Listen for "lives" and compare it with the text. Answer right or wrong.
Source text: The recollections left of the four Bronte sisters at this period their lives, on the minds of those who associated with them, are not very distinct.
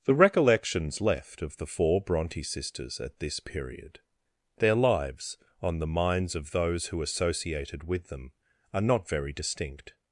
right